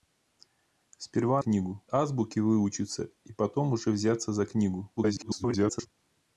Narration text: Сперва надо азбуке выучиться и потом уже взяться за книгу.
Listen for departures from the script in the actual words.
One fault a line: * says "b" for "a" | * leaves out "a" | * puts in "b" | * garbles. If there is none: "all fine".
* says "книгу" for "надо"
* garbles